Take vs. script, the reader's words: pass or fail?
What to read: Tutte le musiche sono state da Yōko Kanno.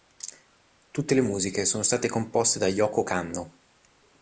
fail